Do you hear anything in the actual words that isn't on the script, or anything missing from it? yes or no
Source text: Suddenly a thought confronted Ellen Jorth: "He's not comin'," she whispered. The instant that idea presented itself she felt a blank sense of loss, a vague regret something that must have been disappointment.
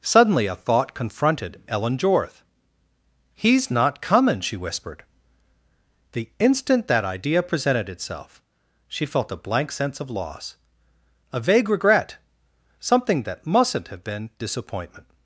yes